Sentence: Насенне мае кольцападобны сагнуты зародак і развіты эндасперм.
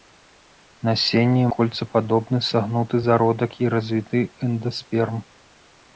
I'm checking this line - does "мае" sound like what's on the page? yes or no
no